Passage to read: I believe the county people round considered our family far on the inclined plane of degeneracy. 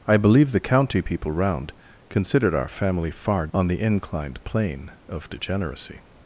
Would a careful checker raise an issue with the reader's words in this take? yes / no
no